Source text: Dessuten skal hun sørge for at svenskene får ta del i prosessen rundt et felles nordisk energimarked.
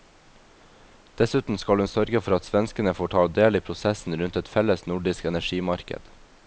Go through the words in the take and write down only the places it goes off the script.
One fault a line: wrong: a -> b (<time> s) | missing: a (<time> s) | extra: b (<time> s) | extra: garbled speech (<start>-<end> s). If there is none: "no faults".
no faults